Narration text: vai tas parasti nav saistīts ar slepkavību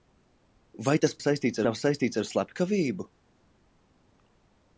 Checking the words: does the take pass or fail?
fail